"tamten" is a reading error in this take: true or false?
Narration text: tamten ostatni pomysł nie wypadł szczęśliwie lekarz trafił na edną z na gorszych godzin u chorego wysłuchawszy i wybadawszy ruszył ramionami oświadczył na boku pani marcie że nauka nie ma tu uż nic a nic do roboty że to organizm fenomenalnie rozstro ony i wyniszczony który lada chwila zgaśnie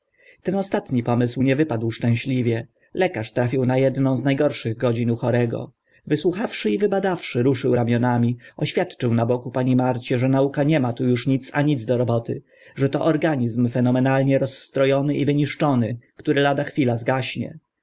true